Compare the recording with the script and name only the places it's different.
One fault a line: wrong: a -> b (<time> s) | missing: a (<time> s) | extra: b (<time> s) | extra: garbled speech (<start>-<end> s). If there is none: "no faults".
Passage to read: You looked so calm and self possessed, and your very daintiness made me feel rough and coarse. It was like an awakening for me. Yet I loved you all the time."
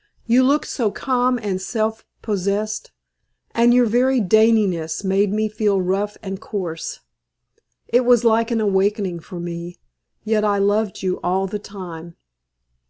no faults